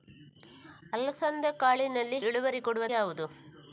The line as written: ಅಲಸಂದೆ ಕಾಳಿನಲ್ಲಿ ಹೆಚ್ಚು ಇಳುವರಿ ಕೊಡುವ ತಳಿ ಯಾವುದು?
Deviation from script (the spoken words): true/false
true